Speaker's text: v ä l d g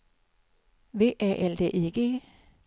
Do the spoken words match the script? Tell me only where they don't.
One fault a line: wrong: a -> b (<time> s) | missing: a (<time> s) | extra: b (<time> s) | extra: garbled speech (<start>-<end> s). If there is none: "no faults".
extra: i (1.7 s)